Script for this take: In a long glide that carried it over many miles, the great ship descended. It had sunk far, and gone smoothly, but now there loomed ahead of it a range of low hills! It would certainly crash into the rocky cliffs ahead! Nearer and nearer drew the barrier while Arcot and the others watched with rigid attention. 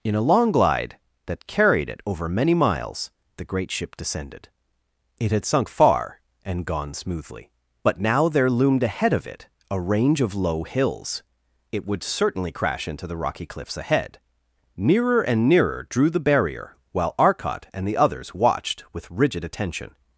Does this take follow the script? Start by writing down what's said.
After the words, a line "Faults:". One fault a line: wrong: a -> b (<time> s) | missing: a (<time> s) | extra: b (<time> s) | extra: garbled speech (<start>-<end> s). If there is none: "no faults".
In a long glide that carried it over many miles, the great ship descended. It had sunk far, and gone smoothly, but now there loomed ahead of it a range of low hills! It would certainly crash into the rocky cliffs ahead! Nearer and nearer drew the barrier while Arcot and the others watched with rigid attention.
Faults:
no faults